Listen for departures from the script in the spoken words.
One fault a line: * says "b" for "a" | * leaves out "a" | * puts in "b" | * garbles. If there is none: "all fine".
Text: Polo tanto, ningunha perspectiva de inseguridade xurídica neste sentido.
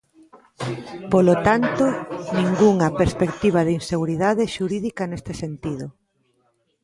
all fine